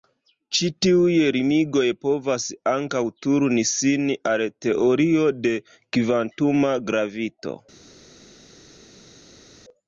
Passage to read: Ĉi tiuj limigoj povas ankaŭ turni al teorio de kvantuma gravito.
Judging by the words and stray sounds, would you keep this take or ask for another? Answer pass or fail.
fail